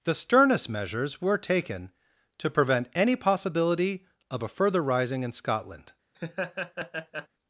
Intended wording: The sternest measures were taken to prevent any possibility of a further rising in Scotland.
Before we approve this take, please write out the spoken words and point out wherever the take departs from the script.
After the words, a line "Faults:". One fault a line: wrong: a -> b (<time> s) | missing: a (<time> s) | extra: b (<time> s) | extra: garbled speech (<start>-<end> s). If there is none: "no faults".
The sternest measures were taken to prevent any possibility of a further rising in Scotland.
Faults:
no faults